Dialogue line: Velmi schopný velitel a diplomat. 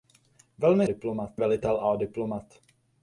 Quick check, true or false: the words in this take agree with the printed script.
false